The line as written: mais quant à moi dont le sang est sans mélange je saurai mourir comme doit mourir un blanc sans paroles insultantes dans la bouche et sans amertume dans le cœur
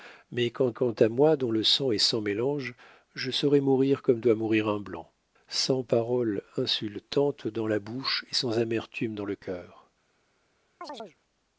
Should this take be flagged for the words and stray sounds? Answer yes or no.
yes